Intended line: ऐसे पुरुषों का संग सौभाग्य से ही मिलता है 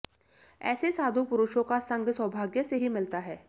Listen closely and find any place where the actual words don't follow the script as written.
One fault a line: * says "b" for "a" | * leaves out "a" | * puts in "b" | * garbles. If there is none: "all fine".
* puts in "साधु"